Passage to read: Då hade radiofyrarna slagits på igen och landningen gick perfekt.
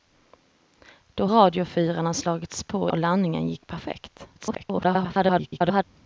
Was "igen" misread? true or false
true